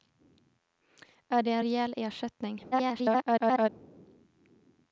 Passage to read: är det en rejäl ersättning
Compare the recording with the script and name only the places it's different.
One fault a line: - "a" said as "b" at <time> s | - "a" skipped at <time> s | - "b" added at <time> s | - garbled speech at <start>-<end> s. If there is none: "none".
- garbled speech at 2.7-3.7 s